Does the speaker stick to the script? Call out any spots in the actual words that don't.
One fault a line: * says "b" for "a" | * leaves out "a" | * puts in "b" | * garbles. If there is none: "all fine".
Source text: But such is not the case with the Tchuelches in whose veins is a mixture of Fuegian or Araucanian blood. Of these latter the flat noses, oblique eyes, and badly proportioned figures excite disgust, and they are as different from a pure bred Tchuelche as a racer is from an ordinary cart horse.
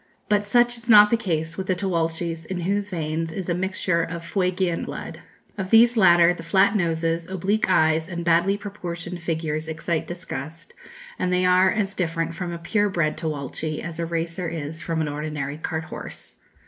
* leaves out "or Araucanian"